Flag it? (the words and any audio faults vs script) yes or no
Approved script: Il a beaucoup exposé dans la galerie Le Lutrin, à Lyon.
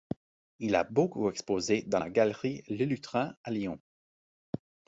no